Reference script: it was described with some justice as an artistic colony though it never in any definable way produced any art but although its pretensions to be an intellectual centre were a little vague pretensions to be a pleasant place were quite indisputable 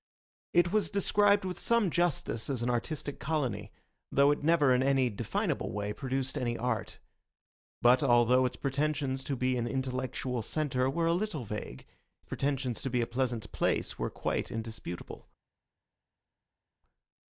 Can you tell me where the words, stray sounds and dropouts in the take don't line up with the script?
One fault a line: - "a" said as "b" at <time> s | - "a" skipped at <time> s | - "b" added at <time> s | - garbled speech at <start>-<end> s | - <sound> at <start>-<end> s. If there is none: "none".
none